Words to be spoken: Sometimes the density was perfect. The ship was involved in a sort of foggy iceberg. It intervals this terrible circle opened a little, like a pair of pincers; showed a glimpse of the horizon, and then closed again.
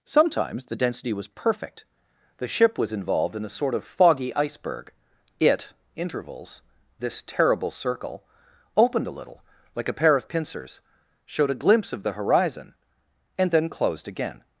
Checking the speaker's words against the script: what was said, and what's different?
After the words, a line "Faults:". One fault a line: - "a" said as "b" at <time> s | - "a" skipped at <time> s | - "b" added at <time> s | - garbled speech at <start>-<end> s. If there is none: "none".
Sometimes the density was perfect. The ship was involved in a sort of foggy iceberg. It intervals this terrible circle opened a little, like a pair of pincers; showed a glimpse of the horizon, and then closed again.
Faults:
none